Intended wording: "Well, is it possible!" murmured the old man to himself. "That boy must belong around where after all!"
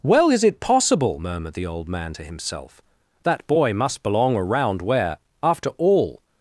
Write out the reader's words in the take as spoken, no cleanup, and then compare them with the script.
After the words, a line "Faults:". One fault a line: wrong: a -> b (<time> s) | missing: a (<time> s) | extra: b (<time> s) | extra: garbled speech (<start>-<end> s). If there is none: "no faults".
"Well, is it possible!" murmured the old man to himself. "That boy must belong around where after all!"
Faults:
no faults